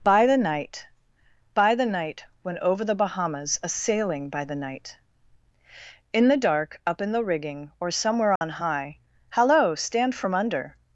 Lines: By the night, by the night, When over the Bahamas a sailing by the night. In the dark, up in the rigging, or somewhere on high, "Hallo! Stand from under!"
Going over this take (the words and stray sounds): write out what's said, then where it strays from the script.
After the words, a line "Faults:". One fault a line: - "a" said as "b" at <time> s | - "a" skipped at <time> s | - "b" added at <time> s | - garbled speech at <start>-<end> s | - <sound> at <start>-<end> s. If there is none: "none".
By the night, by the night, When over the Bahamas a sailing by the night. In the dark, up in the rigging, or somewhere on high, "Hallo! Stand from under!"
Faults:
- dropout at 8.4-8.4 s